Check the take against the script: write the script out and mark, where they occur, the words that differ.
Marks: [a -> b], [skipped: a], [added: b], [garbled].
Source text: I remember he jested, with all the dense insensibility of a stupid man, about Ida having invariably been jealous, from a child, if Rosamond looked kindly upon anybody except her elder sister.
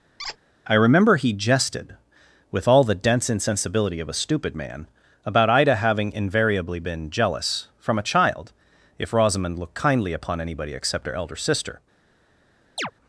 I remember he jested, with all the dense insensibility of a stupid man, about Ida having invariably been jealous, from a child, if Rosamond looked kindly upon anybody except her elder sister.